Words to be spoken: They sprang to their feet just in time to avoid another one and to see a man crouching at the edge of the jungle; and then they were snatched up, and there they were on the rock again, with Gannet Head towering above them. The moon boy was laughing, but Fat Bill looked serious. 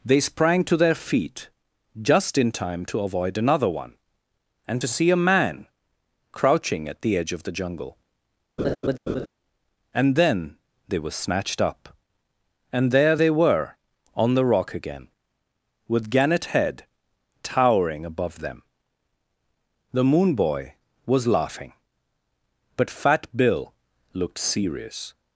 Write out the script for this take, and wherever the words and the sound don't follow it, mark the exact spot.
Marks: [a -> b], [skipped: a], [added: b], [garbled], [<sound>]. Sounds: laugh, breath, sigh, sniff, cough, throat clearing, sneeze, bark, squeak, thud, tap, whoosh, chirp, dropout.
They sprang to their feet just in time to avoid another one and to see a man crouching at the edge of the jungle; [laugh] and then they were snatched up, and there they were on the rock again, with Gannet Head towering above them. The moon boy was laughing, but Fat Bill looked serious.